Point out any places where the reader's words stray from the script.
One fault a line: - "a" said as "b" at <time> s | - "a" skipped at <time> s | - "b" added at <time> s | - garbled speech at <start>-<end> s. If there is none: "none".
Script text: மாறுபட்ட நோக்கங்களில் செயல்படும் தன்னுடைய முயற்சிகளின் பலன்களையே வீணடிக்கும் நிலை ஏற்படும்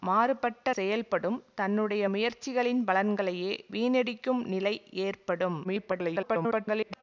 - "நோக்கங்களில்" skipped at 0.7 s
- garbled speech at 5.6-7.0 s